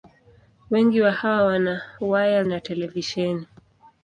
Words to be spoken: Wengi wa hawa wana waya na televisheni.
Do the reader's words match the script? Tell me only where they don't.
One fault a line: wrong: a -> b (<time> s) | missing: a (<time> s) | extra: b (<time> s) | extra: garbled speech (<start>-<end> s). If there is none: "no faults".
no faults